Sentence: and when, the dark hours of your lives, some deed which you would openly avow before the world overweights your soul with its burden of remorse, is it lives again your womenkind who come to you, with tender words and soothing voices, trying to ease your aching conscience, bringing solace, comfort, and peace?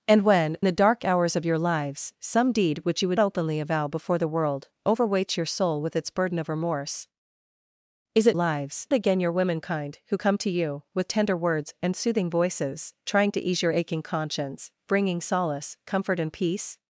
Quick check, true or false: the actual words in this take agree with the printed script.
true